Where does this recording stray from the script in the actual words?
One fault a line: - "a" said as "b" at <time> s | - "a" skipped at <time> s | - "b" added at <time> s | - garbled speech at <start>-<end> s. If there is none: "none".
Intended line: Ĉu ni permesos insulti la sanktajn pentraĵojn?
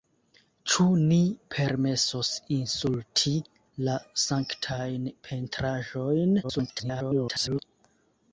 - garbled speech at 6.4-7.6 s